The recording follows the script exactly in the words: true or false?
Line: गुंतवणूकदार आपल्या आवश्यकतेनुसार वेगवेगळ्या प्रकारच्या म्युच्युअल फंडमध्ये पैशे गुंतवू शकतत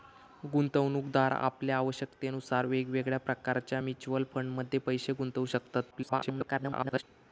false